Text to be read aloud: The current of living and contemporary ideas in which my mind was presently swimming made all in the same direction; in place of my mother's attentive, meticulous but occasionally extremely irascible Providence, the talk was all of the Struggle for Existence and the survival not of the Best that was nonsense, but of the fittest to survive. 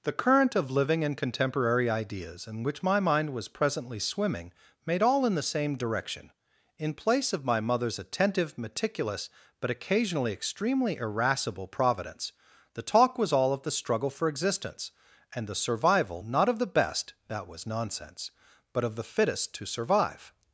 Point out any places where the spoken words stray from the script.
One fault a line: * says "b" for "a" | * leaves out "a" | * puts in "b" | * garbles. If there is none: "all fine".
all fine